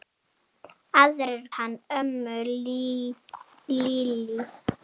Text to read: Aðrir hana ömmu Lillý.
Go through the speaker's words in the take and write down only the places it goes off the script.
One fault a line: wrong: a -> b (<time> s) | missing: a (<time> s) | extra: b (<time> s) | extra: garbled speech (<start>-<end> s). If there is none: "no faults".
no faults